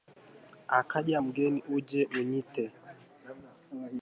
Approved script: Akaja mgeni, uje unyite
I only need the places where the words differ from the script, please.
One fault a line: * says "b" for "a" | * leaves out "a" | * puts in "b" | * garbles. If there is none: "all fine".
all fine